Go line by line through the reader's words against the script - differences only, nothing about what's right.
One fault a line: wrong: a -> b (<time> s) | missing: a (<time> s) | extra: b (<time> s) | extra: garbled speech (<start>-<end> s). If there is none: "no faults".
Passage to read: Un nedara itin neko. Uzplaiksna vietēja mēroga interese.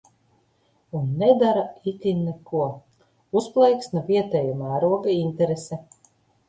no faults